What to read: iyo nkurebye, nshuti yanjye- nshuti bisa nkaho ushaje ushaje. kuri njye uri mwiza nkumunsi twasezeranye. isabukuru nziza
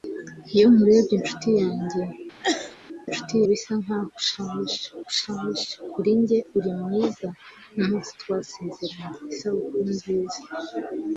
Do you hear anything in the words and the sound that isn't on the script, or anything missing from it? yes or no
yes